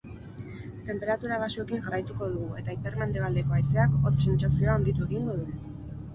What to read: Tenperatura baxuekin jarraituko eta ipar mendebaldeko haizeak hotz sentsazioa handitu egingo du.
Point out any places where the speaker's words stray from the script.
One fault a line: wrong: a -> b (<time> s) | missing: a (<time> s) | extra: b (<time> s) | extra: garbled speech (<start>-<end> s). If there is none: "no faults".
extra: dugu (2.3 s)